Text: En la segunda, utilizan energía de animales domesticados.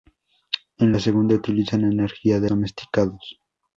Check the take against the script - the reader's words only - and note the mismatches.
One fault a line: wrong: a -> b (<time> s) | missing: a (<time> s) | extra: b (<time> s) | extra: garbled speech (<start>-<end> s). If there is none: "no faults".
missing: animales (2.5 s)